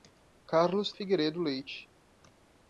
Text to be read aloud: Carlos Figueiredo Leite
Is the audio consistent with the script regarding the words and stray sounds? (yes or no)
yes